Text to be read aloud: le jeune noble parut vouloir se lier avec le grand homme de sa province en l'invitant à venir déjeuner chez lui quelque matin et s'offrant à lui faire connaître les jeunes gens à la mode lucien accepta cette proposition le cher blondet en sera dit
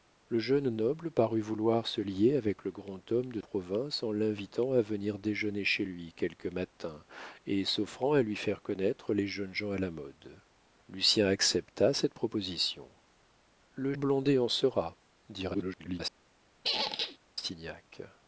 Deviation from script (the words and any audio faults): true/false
true